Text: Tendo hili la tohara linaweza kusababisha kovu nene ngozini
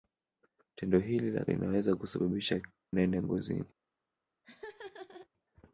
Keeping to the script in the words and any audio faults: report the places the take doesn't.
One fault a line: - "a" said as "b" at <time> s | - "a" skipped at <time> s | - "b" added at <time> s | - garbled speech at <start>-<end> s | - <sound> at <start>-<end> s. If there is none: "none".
- "tohara" skipped at 1.4 s
- "kovu" skipped at 2.6 s
- laugh at 4.4-5.3 s